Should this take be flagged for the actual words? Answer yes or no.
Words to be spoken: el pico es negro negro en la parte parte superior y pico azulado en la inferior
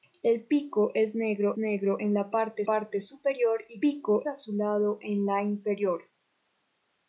no